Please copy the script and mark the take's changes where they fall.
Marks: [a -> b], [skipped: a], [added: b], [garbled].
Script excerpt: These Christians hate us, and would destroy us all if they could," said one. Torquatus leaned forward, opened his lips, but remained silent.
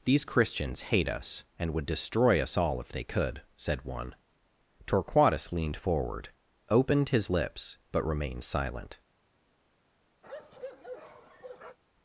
These Christians hate us, and would destroy us all if they could," said one. Torquatus leaned forward, opened his lips, but remained silent.